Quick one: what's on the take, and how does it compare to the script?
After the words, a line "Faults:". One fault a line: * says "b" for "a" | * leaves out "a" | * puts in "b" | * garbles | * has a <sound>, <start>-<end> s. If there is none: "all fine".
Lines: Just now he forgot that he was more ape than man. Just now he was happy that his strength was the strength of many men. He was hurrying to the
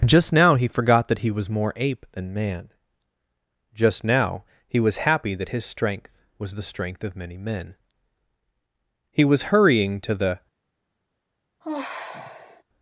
Just now he forgot that he was more ape than man. Just now he was happy that his strength was the strength of many men. He was hurrying to the
Faults:
* has a sigh, 11.6-12.6 s